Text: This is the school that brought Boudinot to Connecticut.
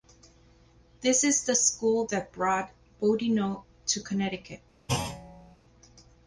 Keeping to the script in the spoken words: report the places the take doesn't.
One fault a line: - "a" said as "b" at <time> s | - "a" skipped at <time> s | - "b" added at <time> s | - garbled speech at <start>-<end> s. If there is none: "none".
none